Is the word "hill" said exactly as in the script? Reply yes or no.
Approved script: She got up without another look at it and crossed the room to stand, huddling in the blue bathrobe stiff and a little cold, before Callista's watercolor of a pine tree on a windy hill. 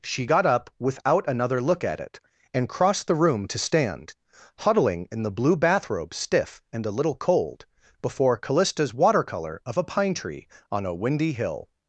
yes